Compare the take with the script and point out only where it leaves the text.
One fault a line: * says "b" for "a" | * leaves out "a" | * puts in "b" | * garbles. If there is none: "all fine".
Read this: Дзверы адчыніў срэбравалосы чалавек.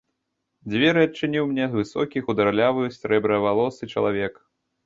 * puts in "мне высокі хударлявы"